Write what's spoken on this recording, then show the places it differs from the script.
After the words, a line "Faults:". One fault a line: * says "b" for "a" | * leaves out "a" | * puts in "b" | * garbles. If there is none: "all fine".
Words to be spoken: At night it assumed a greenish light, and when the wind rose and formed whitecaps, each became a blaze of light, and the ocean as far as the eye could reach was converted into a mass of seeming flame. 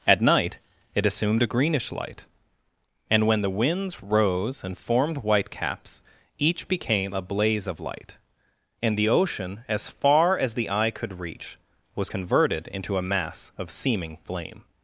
At night it assumed a greenish light, and when the winds rose and formed whitecaps, each became a blaze of light, and the ocean as far as the eye could reach was converted into a mass of seeming flame.
Faults:
* says "winds" for "wind"